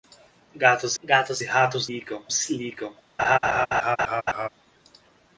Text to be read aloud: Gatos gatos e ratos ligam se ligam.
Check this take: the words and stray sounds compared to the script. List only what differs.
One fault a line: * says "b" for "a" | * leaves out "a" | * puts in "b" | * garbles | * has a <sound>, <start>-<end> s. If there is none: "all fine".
* has a laugh, 3.2-4.5 s